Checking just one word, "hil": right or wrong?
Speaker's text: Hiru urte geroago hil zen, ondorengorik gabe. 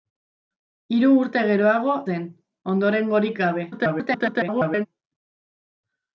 wrong